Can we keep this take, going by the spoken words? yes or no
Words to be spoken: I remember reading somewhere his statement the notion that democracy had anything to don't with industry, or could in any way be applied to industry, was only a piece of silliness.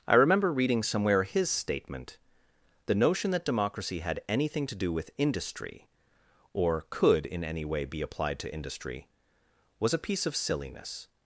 no